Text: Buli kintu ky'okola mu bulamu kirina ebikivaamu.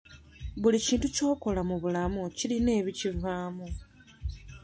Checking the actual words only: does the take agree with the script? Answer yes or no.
yes